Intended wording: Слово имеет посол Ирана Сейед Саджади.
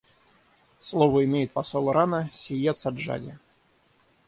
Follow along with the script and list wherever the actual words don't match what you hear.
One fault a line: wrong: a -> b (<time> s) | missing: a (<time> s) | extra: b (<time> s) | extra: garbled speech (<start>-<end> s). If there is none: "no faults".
no faults